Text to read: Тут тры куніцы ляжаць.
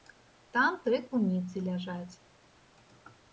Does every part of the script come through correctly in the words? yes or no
no